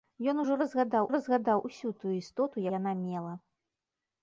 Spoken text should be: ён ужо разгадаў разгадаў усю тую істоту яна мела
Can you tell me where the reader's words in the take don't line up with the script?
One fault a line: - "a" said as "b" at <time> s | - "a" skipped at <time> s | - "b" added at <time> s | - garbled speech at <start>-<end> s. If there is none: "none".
none